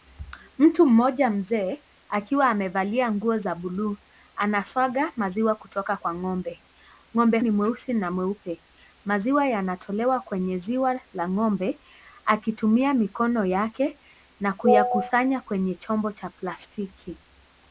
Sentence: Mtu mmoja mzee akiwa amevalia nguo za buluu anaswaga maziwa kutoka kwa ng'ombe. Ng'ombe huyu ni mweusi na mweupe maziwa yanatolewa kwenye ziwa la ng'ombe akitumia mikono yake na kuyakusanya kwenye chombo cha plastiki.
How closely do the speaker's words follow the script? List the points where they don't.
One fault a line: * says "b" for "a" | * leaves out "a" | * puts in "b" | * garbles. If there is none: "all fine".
* leaves out "huyu"